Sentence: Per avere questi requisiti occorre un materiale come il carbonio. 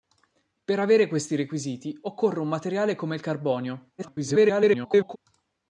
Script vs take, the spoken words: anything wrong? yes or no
yes